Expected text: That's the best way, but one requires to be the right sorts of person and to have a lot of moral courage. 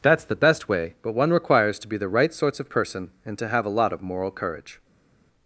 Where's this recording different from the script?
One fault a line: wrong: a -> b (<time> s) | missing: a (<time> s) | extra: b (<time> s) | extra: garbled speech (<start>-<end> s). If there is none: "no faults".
no faults